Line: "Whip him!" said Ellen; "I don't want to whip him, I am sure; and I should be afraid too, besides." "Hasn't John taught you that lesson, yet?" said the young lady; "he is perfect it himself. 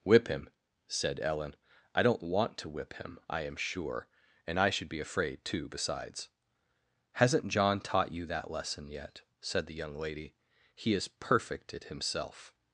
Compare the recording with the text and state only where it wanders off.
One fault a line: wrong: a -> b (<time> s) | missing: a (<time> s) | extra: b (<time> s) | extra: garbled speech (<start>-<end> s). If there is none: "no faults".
no faults